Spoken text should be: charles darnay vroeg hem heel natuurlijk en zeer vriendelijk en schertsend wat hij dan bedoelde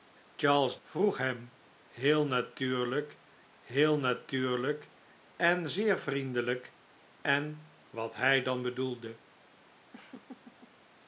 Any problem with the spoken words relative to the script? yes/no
yes